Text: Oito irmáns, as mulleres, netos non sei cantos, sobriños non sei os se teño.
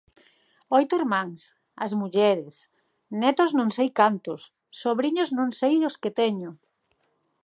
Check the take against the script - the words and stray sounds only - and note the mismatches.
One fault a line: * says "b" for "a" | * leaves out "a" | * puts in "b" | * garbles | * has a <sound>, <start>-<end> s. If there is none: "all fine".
* says "que" for "se"